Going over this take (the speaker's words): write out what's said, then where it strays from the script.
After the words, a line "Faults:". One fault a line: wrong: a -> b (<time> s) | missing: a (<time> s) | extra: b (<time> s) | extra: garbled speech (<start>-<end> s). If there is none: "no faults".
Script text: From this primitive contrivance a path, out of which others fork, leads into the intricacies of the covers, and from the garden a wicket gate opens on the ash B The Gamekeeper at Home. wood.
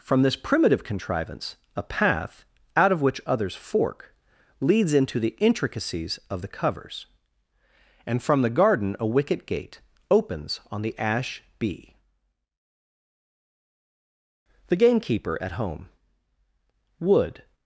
From this primitive contrivance a path, out of which others fork, leads into the intricacies of the covers, and from the garden a wicket gate opens on the ash B The Gamekeeper at Home. wood.
Faults:
no faults